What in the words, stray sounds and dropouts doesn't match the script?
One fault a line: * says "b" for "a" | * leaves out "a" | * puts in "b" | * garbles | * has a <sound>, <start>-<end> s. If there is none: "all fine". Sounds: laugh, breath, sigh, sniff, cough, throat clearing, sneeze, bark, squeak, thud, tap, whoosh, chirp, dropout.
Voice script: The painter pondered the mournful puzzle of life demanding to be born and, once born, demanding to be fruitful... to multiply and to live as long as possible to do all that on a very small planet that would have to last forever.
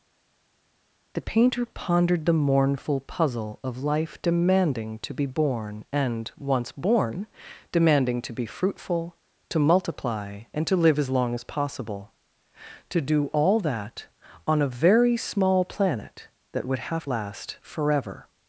* leaves out "to"